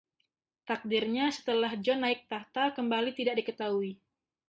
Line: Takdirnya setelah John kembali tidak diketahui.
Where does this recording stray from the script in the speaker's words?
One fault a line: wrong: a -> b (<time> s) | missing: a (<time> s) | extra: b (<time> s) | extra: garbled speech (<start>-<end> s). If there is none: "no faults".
extra: naik takhta (2.0 s)